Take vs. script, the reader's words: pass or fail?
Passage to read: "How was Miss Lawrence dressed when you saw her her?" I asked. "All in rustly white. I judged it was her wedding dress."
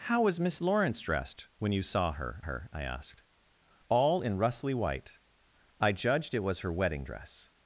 pass